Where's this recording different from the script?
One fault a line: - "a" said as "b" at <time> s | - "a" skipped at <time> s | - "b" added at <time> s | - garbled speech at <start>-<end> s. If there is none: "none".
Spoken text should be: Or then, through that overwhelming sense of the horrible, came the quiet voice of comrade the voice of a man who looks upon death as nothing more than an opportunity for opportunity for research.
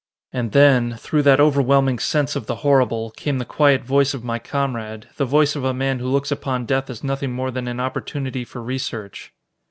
- "Or" said as "And" at 0.3 s
- "my" added at 4.2 s
- "opportunity for" skipped at 8.6 s